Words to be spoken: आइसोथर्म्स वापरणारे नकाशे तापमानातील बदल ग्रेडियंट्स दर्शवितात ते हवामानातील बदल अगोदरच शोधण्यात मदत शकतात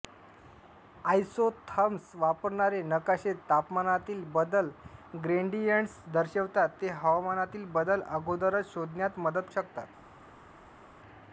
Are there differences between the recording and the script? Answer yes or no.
no